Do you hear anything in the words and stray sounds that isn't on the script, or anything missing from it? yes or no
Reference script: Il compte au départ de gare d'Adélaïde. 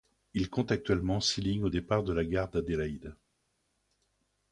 yes